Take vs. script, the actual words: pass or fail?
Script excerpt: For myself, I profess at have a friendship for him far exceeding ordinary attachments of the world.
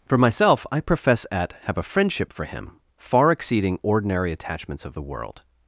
pass